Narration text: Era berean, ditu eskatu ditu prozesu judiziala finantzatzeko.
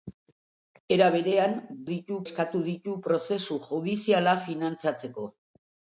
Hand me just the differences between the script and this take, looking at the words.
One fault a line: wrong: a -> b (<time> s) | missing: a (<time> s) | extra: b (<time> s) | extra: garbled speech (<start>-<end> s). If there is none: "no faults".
no faults